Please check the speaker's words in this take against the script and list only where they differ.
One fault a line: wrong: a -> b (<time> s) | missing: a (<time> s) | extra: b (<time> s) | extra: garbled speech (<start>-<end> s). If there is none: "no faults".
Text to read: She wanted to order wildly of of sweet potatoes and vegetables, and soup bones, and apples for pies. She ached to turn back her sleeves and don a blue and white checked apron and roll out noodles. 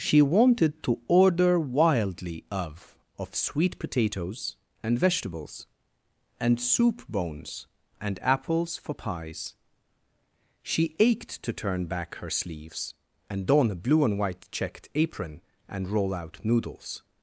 no faults